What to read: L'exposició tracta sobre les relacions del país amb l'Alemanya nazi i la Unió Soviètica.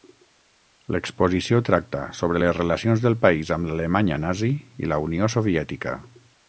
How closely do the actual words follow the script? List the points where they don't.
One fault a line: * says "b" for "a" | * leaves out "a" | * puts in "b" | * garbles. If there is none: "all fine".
all fine